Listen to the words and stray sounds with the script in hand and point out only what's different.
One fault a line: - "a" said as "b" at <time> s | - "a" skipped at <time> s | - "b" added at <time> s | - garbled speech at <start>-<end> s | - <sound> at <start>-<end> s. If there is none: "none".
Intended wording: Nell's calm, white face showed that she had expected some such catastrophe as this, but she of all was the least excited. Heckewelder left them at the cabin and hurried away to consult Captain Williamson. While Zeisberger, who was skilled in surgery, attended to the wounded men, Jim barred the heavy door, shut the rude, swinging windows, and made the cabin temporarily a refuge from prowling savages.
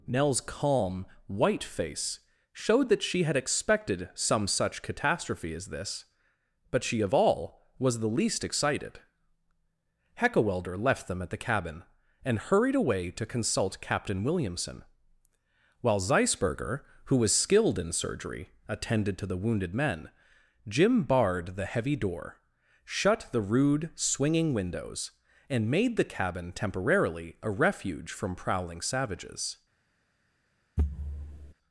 - thud at 30.8-31.5 s